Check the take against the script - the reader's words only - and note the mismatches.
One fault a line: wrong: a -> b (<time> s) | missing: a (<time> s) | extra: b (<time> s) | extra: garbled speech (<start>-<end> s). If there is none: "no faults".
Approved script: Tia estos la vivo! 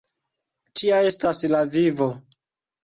wrong: estos -> estas (1.1 s)